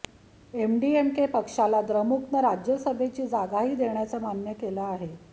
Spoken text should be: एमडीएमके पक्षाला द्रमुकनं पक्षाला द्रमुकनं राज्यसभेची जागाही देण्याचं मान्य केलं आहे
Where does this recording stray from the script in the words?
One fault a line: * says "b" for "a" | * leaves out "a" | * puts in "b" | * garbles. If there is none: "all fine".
* leaves out "पक्षाला द्रमुकनं"